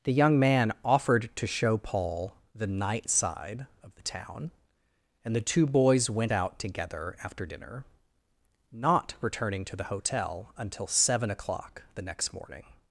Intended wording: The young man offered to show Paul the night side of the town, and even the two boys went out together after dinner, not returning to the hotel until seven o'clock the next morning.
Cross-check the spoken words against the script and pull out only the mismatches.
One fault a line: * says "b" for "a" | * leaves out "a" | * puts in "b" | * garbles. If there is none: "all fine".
* leaves out "even"